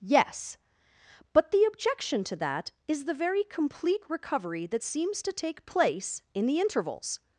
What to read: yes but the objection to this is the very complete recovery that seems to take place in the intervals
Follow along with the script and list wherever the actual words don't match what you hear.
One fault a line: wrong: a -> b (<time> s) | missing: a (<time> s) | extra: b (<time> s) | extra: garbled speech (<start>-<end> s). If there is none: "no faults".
wrong: this -> that (2.4 s)